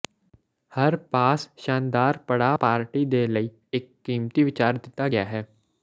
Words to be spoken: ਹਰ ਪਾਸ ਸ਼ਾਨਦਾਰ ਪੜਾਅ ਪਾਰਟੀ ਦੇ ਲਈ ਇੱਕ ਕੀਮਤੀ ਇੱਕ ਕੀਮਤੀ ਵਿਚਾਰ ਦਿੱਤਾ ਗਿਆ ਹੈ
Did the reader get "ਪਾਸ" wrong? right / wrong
right